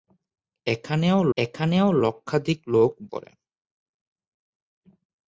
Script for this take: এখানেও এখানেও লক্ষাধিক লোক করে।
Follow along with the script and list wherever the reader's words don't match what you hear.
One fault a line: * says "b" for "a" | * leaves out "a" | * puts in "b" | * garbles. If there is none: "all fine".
all fine